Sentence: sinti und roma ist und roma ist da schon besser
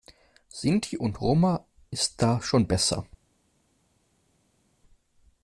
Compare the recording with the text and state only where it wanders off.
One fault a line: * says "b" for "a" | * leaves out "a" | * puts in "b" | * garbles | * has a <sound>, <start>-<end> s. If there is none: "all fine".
* leaves out "und roma ist"